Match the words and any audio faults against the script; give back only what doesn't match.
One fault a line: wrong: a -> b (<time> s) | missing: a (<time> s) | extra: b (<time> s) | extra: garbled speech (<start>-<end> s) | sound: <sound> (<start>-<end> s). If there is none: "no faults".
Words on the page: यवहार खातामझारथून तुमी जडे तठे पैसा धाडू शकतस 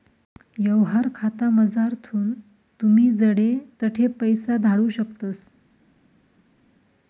no faults